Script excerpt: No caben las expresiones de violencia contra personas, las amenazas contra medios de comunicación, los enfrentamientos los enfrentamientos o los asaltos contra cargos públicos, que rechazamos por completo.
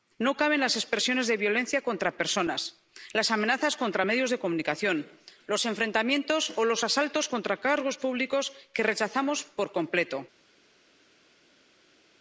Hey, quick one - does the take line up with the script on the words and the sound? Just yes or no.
no